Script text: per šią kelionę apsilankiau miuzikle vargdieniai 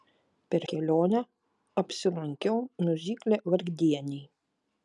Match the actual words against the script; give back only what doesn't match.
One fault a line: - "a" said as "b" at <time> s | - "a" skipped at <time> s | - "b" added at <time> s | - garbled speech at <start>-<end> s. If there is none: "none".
- "šią" skipped at 0.6 s